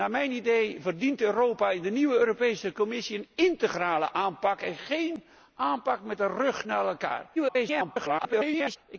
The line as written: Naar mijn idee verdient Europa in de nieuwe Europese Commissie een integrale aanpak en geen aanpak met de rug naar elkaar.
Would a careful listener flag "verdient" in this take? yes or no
no